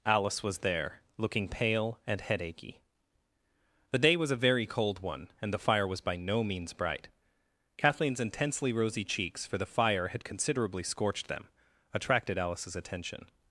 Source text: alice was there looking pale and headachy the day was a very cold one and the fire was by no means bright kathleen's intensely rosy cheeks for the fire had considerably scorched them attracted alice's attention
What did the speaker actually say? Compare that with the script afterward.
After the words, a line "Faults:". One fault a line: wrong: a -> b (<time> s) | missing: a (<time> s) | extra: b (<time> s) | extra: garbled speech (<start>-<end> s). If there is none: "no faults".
alice was there looking pale and headachy the day was a very cold one and the fire was by no means bright kathleen's intensely rosy cheeks for the fire had considerably scorched them attracted alice's attention
Faults:
no faults